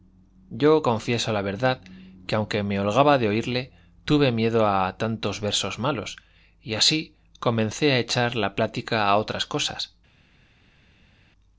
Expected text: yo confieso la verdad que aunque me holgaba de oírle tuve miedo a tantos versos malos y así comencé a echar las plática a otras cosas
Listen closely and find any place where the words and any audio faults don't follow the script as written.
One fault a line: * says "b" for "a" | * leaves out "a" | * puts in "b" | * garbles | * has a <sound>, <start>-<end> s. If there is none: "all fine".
* says "la" for "las"